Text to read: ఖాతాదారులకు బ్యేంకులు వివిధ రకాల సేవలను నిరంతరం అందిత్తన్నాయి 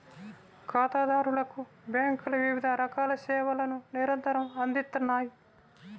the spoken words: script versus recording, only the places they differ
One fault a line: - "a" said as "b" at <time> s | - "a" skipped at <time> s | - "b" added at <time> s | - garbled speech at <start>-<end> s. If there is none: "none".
none